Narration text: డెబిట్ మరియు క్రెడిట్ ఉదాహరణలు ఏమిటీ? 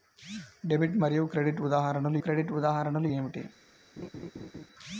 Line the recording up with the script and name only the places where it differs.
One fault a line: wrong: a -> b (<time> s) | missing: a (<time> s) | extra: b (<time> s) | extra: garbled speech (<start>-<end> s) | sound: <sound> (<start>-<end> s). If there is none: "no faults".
extra: క్రెడిట్ ఉదాహరణలు (2.2 s)
sound: laugh (4.0-4.7 s)